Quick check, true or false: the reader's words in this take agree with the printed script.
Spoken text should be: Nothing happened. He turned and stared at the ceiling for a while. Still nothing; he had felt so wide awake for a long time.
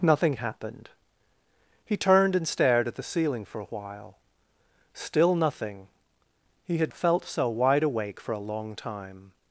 true